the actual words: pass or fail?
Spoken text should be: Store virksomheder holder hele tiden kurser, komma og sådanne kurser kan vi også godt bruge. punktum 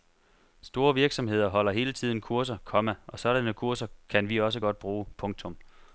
pass